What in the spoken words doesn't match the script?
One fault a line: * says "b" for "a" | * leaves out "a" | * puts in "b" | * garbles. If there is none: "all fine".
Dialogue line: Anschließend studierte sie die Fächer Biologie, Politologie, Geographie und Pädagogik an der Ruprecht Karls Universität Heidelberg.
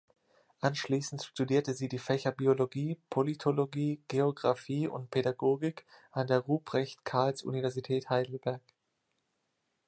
all fine